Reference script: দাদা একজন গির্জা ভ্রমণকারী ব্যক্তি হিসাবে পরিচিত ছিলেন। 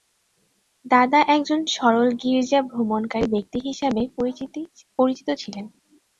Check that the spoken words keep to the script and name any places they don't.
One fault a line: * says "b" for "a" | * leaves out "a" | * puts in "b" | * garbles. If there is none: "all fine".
* puts in "সরল"